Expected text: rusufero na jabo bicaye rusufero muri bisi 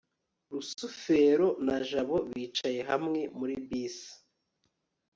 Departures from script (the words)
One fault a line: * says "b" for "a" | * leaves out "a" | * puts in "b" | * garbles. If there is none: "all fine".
* says "hamwe" for "rusufero"